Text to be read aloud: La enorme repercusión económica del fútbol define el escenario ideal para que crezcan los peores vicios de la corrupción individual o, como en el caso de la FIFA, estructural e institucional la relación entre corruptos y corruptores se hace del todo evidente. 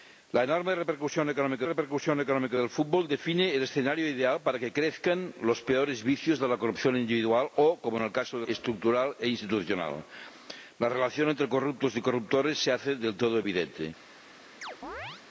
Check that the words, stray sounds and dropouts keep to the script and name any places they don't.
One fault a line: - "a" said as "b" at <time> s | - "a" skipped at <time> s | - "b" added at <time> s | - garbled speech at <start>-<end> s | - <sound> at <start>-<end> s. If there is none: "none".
- "repercusión económica" added at 1.6 s
- "la FIFA" skipped at 8.5 s
- chirp at 14.6-15.2 s